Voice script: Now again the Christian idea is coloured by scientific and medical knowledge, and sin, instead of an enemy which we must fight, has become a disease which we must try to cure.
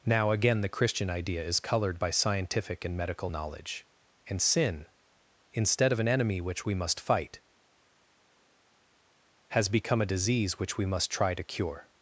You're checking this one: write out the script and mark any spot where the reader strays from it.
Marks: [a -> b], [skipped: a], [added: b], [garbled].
Now again the Christian idea is coloured by scientific and medical knowledge, and sin, instead of an enemy which we must fight, has become a disease which we must try to cure.